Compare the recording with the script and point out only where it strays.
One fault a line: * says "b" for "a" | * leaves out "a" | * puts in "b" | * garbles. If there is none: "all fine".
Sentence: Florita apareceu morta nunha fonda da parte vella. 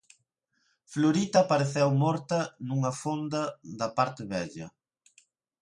all fine